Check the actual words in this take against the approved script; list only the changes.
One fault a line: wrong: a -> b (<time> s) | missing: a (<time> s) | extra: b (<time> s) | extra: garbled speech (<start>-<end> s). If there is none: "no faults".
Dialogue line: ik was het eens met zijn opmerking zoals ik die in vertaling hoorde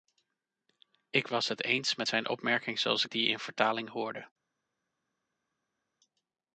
no faults